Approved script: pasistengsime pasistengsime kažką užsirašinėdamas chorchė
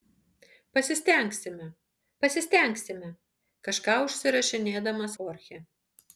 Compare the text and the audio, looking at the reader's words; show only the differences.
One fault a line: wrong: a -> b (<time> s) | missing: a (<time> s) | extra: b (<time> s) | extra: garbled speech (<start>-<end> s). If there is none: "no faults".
no faults